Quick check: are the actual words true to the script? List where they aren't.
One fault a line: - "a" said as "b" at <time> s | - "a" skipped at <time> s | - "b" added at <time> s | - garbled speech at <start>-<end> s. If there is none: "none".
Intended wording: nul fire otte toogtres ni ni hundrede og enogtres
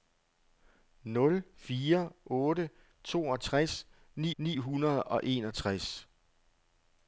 none